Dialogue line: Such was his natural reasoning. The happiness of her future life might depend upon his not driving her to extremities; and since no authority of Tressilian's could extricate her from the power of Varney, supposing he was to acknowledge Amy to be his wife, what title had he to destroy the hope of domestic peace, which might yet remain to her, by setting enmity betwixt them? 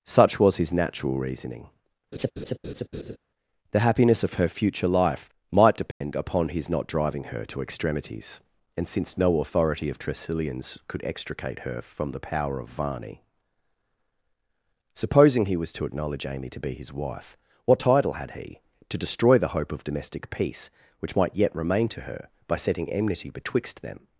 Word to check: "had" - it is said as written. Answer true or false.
true